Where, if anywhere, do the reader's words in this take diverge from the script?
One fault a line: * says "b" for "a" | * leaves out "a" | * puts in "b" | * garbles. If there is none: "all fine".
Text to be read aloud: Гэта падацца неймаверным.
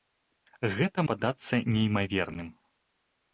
all fine